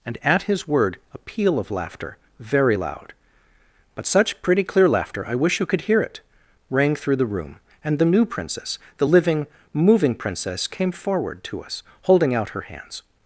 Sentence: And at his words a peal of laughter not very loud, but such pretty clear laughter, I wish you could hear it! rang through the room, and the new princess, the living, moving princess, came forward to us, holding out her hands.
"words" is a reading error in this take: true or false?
true